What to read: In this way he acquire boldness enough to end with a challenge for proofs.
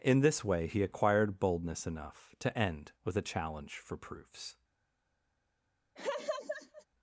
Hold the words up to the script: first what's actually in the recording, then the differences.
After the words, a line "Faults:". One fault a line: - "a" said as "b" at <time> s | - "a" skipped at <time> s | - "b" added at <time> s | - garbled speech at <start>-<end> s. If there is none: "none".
In this way he acquired boldness enough to end with a challenge for proofs.
Faults:
- "acquire" said as "acquired" at 0.8 s